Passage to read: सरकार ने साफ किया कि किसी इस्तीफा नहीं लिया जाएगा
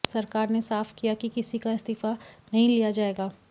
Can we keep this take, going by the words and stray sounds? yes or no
no